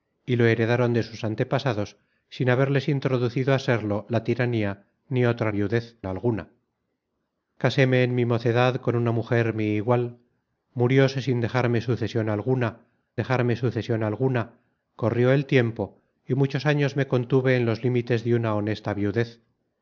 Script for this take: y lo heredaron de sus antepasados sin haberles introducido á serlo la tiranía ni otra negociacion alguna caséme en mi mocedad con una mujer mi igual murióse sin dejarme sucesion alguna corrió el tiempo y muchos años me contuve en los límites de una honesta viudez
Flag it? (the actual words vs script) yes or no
yes